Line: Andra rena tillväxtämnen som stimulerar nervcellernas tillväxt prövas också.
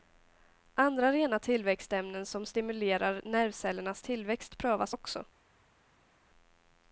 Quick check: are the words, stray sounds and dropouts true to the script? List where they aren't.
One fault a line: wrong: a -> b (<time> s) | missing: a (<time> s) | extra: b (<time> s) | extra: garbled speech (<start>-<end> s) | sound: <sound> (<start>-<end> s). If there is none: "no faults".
no faults